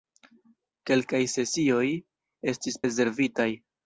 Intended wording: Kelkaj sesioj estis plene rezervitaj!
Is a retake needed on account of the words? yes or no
yes